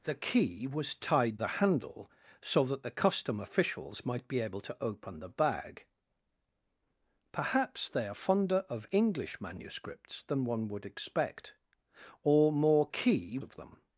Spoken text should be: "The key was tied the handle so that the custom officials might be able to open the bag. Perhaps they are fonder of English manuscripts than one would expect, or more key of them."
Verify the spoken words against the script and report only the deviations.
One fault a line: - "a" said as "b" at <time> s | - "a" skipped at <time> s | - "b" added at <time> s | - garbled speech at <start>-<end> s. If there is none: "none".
none